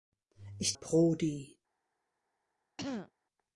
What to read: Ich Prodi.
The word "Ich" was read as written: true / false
true